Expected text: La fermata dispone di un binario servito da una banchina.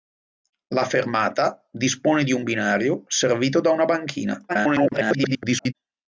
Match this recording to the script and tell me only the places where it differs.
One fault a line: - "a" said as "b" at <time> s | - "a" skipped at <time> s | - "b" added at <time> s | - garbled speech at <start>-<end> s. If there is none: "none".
- garbled speech at 4.5-5.7 s